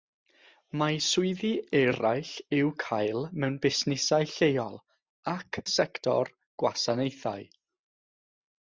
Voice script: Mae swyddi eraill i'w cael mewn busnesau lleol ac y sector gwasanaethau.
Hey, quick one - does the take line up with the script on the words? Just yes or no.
yes